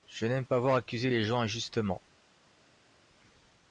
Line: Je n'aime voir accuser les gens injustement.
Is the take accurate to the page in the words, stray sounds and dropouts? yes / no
no